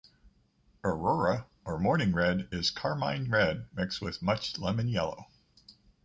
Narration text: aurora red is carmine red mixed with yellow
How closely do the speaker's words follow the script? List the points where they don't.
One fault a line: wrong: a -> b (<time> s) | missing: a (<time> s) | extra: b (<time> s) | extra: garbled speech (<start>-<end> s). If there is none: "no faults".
extra: or morning (1.6 s)
extra: much lemon (4.2 s)